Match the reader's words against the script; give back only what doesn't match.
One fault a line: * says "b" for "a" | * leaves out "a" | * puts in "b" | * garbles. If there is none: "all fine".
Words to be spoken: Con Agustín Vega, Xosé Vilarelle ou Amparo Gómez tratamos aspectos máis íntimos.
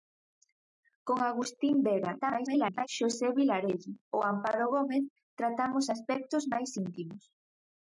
* garbles